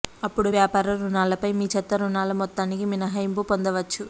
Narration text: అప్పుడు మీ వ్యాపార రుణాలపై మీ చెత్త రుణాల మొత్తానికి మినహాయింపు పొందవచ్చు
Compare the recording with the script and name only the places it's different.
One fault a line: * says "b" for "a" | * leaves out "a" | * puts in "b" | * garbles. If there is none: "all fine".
* leaves out "మీ"